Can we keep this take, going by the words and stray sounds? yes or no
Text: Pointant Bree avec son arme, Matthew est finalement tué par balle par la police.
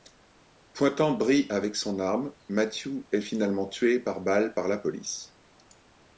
yes